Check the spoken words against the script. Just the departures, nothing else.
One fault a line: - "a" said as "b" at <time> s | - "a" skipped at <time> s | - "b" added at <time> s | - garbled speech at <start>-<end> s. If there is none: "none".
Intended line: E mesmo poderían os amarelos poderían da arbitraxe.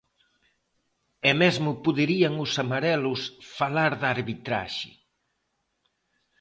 - "poderían" said as "falar" at 3.6 s